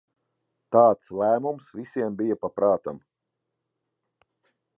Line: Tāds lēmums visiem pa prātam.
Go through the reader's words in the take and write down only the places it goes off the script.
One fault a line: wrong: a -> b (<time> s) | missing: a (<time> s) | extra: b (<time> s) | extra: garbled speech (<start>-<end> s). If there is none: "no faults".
extra: bija (2.2 s)